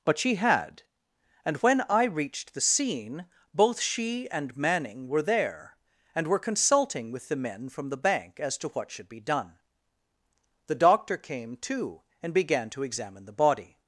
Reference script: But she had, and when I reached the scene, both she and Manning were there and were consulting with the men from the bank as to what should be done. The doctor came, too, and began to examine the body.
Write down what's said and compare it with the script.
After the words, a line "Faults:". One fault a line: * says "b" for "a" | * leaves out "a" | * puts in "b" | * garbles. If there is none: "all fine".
But she had, and when I reached the scene, both she and Manning were there and were consulting with the men from the bank as to what should be done. The doctor came, too, and began to examine the body.
Faults:
all fine